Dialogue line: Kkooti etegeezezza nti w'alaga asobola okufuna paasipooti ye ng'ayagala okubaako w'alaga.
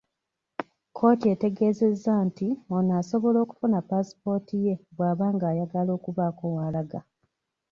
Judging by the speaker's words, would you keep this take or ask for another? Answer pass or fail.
fail